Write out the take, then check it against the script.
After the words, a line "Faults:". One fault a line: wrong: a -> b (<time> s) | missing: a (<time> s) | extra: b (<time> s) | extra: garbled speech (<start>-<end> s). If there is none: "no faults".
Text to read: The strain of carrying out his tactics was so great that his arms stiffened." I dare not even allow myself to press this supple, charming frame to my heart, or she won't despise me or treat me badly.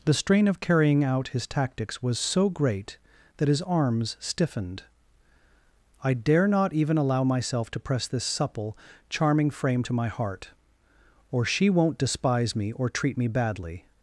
The strain of carrying out his tactics was so great that his arms stiffened." I dare not even allow myself to press this supple, charming frame to my heart, or she won't despise me or treat me badly.
Faults:
no faults